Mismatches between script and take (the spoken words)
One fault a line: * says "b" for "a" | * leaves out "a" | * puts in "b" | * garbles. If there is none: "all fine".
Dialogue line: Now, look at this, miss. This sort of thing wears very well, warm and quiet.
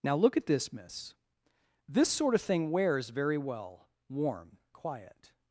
* leaves out "and"